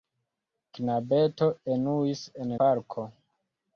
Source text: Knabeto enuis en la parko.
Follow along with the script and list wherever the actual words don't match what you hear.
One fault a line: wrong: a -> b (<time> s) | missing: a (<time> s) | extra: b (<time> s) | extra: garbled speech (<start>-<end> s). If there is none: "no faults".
missing: la (2.6 s)